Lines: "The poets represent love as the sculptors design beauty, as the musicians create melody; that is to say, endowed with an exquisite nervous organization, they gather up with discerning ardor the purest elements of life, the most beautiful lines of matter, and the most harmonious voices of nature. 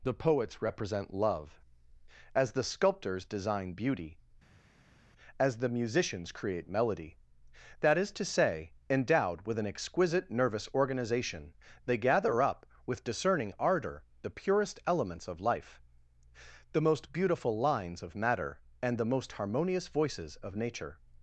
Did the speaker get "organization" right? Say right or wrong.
right